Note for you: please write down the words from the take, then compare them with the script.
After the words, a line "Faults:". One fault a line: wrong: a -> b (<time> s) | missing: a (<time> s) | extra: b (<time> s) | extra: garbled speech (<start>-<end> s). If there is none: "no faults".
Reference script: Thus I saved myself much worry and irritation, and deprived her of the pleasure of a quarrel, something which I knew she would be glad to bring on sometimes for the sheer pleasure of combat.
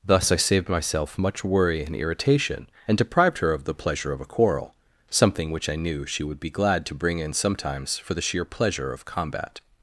Thus I saved myself much worry and irritation, and deprived her of the pleasure of a quarrel, something which I knew she would be glad to bring in sometimes for the sheer pleasure of combat.
Faults:
wrong: on -> in (7.2 s)